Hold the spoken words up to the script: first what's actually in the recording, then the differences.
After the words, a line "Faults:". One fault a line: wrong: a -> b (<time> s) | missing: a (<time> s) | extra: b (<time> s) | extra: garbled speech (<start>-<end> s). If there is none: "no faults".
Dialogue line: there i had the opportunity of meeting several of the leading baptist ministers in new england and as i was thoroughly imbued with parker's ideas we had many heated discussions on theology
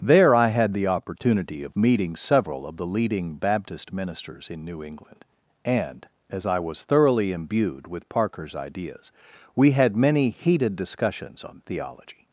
there i had the opportunity of meeting several of the leading baptist ministers in new england and as i was thoroughly imbued with parker's ideas we had many heated discussions on theology
Faults:
no faults